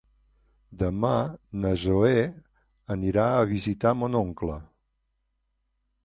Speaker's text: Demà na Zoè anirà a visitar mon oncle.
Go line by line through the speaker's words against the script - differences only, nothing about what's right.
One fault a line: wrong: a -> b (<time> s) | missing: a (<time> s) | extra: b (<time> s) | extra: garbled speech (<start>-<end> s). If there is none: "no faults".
no faults